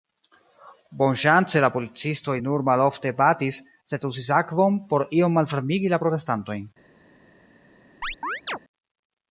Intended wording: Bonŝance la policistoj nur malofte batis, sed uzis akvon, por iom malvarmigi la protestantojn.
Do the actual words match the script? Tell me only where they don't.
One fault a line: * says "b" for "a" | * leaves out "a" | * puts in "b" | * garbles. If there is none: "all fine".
all fine